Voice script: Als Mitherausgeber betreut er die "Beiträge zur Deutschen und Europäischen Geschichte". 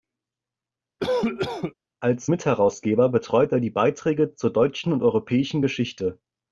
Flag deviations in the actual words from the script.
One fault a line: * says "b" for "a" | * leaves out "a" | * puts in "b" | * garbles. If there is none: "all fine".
all fine